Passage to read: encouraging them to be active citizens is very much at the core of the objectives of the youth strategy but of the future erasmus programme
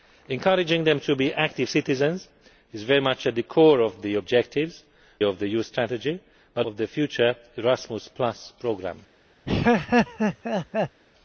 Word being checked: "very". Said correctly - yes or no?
yes